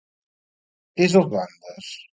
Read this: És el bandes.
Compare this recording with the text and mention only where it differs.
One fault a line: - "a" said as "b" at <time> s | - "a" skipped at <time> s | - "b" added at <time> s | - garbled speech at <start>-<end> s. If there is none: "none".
none